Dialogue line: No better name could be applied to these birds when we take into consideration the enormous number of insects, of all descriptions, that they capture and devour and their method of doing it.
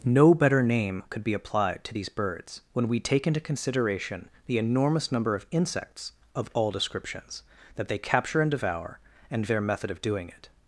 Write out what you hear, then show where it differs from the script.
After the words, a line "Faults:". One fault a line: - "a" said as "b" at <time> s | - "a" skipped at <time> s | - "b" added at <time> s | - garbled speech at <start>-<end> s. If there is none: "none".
No better name could be applied to these birds when we take into consideration the enormous number of insects, of all descriptions, that they capture and devour and their method of doing it.
Faults:
none